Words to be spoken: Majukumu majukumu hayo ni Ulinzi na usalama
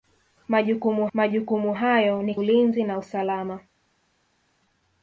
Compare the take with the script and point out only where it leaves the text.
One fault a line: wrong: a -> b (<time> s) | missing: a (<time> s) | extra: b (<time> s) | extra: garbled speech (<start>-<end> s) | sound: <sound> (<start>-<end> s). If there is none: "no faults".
no faults